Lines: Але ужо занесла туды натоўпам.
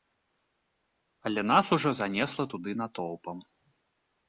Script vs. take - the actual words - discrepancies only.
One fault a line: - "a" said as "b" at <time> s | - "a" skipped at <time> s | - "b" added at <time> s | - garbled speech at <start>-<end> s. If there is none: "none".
- "нас" added at 1.5 s